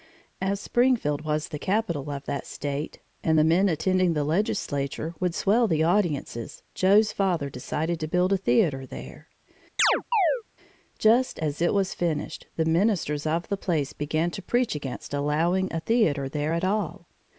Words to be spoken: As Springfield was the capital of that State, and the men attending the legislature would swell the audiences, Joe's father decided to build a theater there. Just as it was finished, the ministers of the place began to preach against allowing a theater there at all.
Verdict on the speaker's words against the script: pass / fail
pass